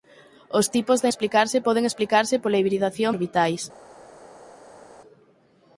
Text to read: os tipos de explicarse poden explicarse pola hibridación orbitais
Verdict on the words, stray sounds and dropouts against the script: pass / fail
pass